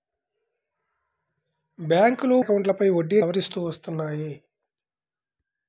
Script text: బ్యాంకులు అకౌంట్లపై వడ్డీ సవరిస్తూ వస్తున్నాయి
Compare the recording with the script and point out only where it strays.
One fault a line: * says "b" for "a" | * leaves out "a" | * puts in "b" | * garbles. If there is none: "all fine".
all fine